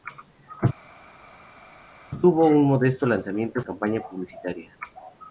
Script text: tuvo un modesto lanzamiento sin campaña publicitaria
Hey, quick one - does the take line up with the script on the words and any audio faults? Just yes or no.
no